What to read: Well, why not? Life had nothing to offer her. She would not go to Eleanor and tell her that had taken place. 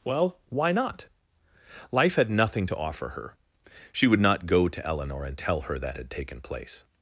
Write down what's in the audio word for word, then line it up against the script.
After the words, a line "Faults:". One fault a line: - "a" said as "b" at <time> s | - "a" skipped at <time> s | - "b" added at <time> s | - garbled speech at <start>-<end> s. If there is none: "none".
Well, why not? Life had nothing to offer her. She would not go to Eleanor and tell her that had taken place.
Faults:
none